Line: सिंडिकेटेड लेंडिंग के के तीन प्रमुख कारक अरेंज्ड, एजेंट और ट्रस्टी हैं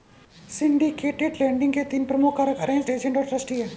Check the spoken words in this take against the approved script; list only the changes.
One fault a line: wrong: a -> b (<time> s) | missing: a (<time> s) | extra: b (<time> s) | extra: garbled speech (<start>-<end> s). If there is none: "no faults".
missing: के (1.8 s)